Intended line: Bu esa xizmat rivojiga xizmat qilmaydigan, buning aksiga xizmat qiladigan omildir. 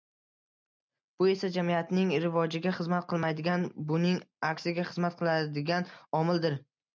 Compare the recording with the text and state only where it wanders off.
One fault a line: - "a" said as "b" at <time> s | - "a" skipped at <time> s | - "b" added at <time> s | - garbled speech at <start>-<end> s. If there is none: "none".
- "xizmat" said as "jamiyatning" at 1.6 s